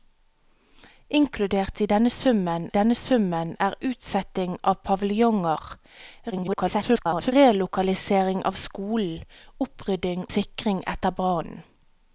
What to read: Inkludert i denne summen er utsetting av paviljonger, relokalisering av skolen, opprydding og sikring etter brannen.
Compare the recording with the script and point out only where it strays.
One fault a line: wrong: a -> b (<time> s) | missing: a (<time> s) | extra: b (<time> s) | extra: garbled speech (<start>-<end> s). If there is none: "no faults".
extra: denne summen (2.8 s)
extra: garbled speech (6.3-7.3 s)
missing: og (10.2 s)